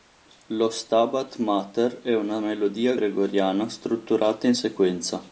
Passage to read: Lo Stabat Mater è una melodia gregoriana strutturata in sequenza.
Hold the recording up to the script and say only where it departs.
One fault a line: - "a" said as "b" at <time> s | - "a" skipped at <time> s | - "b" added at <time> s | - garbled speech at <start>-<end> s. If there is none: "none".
none